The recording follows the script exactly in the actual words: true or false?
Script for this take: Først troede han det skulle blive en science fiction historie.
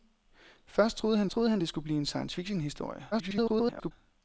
false